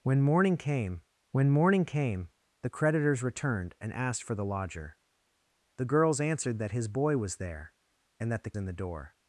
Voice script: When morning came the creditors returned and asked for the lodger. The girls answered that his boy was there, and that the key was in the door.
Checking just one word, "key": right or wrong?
wrong